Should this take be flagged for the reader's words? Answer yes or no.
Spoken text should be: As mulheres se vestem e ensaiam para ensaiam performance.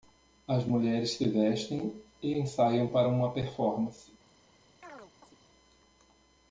yes